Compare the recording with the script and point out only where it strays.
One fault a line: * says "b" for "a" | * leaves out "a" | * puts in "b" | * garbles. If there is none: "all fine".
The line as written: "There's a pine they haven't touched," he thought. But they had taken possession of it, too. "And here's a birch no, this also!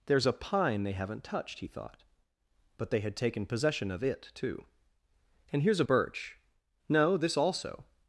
all fine